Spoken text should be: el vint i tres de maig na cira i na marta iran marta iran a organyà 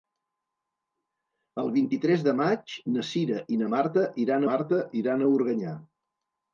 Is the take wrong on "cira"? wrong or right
right